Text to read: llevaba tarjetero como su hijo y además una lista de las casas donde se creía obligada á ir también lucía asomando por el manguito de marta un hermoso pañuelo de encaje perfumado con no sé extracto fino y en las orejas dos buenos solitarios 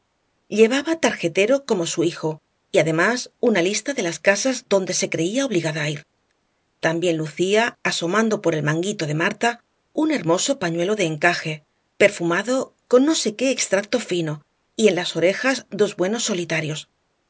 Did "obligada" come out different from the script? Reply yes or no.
no